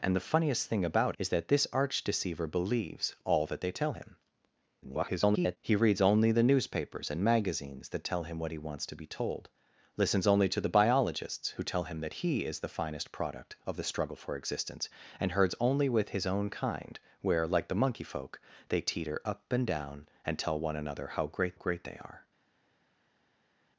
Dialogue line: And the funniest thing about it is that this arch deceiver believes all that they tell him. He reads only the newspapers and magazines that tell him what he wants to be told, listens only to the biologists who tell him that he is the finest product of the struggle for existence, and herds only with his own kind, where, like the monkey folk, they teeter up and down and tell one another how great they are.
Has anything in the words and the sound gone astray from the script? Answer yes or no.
yes